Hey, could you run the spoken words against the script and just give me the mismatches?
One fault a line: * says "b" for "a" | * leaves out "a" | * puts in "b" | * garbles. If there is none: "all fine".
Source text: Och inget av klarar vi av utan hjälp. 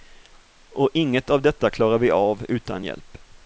* puts in "detta"